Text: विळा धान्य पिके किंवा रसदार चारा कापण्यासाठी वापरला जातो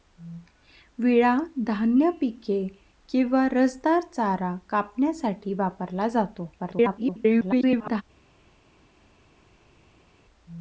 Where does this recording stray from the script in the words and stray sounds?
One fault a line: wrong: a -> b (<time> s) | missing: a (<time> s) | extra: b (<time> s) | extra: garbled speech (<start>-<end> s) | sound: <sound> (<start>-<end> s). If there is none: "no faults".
extra: garbled speech (6.6-8.0 s)